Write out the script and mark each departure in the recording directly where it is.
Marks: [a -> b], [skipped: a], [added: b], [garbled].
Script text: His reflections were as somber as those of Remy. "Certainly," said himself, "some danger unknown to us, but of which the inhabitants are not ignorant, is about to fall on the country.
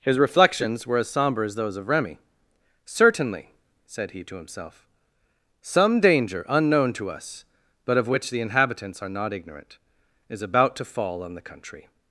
His reflections were as somber as those of Remy. "Certainly," said [added: he to] himself, "some danger unknown to us, but of which the inhabitants are not ignorant, is about to fall on the country.